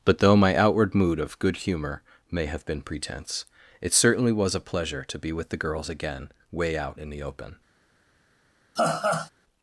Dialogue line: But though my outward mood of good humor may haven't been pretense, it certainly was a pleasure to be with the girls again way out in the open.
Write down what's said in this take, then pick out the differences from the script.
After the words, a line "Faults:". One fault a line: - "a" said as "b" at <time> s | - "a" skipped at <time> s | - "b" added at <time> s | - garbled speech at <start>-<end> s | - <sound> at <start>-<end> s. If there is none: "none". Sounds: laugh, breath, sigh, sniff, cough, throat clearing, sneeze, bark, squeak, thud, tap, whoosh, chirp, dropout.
But though my outward mood of good humor may have been pretense, it certainly was a pleasure to be with the girls again way out in the open.
Faults:
- "haven't" said as "have" at 2.5 s
- laugh at 8.8-9.3 s